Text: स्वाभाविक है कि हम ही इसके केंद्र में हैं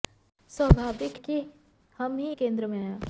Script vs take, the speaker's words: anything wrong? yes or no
yes